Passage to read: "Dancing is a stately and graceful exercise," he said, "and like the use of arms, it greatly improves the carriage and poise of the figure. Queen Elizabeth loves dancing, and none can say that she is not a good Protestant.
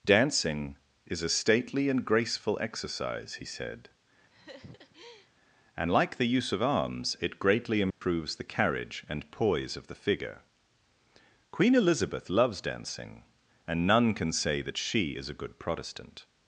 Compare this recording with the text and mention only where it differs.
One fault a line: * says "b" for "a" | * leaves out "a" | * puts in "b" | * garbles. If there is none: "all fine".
* leaves out "not"